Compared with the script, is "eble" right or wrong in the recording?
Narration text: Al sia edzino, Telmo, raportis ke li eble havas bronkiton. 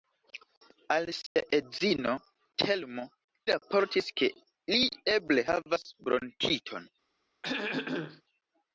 right